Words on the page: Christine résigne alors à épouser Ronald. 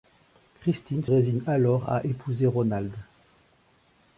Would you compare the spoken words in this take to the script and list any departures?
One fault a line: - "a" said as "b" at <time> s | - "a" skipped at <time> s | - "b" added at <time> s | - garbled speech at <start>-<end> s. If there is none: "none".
none